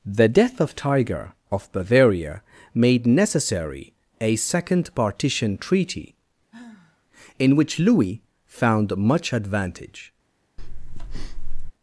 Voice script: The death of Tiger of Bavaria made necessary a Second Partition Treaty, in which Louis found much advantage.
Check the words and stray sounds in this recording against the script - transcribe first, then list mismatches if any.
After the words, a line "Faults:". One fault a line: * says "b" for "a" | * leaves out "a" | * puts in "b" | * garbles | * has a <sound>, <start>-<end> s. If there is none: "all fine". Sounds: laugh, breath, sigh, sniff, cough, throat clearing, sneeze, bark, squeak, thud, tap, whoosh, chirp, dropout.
The death of Tiger of Bavaria made necessary a Second Partition Treaty, in which Louis found much advantage.
Faults:
* has a sigh, 6.5-7.1 s
* has a breath, 10.6-11.7 s